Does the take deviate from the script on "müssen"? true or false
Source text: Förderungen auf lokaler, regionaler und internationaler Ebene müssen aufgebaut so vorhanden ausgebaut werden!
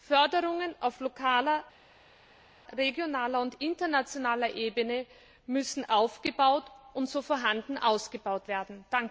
false